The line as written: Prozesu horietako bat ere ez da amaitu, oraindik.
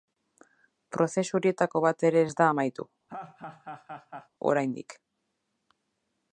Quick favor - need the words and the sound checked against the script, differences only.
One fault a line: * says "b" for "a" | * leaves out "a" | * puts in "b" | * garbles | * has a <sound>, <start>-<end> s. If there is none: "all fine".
* has a laugh, 3.1-4.3 s